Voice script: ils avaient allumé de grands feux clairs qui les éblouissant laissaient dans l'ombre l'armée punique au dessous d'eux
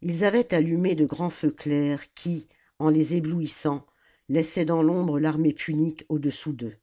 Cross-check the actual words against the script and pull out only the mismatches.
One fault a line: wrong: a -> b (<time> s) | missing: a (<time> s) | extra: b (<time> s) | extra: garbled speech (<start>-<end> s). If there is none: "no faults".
extra: en (2.8 s)